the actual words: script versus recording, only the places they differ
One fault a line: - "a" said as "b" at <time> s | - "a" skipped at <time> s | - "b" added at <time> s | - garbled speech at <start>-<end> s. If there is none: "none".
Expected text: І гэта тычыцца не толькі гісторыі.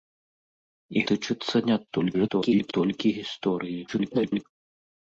- "гэта" skipped at 1.0 s
- garbled speech at 1.9-2.7 s
- garbled speech at 3.9-4.4 s